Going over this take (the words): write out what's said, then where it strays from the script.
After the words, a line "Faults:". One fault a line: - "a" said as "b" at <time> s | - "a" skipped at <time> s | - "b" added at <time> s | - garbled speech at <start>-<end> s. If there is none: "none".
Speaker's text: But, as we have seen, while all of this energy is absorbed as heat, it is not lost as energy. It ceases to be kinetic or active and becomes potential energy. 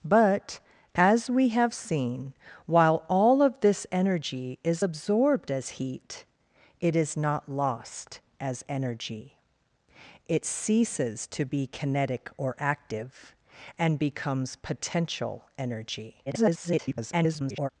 But, as we have seen, while all of this energy is absorbed as heat, it is not lost as energy. It ceases to be kinetic or active and becomes potential energy. [garbled]
Faults:
- garbled speech at 16.3-17.7 s